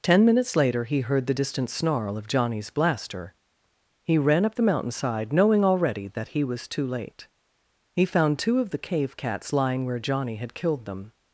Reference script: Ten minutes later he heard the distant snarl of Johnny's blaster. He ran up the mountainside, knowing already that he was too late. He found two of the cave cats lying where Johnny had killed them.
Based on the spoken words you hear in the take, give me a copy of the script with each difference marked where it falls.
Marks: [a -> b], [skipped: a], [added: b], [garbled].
Ten minutes later he heard the distant snarl of Johnny's blaster. He ran up the mountainside, knowing already that he was too late. He found two of the cave cats lying where Johnny had killed them.